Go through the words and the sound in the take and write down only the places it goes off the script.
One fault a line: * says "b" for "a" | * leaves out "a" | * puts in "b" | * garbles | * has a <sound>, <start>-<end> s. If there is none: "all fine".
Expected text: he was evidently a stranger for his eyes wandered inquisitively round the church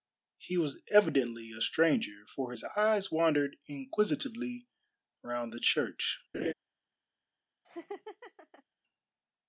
* has a laugh, 6.3-6.5 s
* has a laugh, 7.6-8.6 s